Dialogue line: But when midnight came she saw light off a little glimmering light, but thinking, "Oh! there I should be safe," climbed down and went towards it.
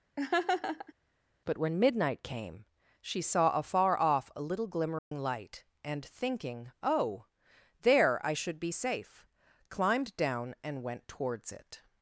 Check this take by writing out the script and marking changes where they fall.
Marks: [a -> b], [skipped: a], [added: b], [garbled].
But when midnight came she saw [light -> afar] off a little glimmering light, [but -> and] thinking, "Oh! there I should be safe," climbed down and went towards it.